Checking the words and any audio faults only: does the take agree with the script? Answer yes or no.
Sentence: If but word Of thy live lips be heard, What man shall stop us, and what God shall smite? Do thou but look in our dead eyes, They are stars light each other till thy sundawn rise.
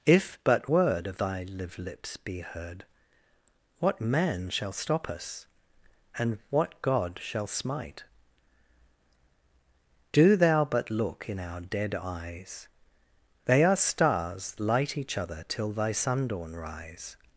yes